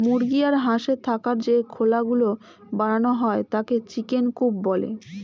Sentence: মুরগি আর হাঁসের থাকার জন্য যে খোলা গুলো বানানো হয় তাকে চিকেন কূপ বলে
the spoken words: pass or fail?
fail